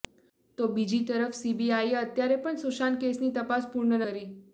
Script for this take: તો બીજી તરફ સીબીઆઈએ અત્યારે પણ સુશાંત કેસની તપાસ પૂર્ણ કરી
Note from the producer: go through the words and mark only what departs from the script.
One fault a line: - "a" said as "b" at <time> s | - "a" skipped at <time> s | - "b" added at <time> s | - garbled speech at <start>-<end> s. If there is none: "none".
none